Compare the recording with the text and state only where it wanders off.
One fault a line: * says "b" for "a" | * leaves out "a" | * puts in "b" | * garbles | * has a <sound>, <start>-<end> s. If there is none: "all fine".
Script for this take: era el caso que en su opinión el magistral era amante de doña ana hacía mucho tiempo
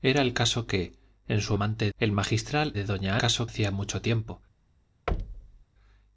* says "amante" for "opinión"
* leaves out "era amante"
* says "caso" for "ana"
* has a thud, 5.1-5.6 s